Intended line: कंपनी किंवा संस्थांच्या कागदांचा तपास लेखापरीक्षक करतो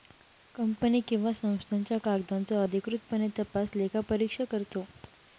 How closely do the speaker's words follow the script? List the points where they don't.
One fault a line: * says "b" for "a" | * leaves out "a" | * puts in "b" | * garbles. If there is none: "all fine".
* puts in "अधिकृतपणे"